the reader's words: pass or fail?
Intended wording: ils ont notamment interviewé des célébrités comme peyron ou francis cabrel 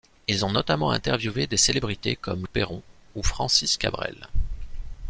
pass